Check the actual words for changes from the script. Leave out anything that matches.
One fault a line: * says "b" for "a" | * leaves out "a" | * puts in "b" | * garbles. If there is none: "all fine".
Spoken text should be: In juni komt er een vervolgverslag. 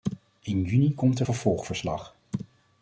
* leaves out "een"